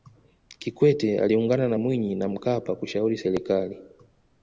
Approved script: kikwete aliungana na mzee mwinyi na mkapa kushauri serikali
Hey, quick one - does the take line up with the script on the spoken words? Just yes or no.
no